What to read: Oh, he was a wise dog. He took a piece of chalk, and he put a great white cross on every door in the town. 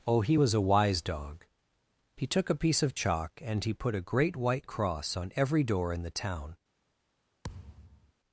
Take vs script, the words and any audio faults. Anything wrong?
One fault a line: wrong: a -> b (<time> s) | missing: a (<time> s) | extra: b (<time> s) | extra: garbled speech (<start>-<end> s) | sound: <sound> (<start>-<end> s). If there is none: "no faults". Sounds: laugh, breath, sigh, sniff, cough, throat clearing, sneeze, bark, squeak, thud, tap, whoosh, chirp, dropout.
sound: thud (7.4-8.1 s)